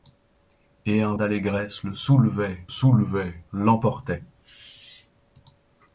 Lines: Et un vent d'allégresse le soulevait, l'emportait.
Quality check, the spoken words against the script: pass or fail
fail